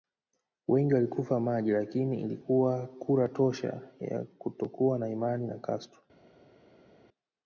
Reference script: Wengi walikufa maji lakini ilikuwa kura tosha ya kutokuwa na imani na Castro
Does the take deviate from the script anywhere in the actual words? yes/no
no